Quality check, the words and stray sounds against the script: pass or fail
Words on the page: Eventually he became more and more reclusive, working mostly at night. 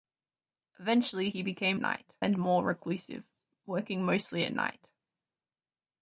fail